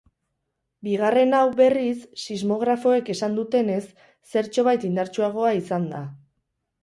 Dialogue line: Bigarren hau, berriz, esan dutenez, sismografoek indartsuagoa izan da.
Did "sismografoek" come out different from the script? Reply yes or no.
yes